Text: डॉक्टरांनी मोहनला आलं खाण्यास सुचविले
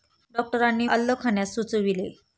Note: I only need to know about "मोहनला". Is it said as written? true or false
false